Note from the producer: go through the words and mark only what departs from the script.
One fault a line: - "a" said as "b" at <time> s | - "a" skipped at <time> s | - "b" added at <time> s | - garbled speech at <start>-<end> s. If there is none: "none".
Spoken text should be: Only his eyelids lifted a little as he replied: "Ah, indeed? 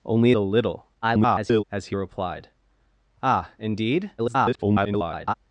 - "his eyelids lifted" skipped at 0.3 s
- garbled speech at 1.0-1.6 s
- garbled speech at 4.2-5.3 s